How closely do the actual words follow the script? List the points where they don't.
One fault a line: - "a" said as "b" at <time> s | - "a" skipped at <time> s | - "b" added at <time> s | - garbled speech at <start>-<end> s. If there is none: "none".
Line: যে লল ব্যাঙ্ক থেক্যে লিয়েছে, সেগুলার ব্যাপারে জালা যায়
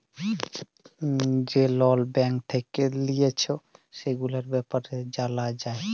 none